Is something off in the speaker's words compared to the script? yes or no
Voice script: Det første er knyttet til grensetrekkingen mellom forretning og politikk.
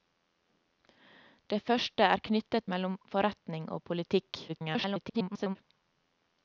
yes